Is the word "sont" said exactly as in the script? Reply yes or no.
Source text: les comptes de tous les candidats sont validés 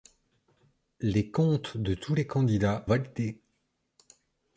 no